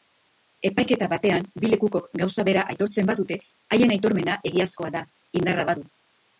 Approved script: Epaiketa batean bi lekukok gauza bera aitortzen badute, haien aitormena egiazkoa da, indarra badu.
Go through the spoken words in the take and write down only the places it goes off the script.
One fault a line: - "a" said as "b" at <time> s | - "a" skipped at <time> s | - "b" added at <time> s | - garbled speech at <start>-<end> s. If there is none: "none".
none